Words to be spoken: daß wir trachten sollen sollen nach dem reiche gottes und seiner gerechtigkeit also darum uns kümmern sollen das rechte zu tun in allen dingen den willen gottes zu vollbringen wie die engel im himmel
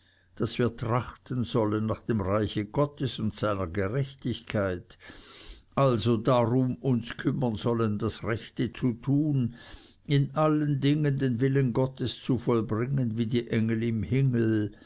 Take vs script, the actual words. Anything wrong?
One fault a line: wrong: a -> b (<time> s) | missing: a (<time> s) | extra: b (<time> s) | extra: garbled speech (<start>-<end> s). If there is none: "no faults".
missing: sollen (1.9 s)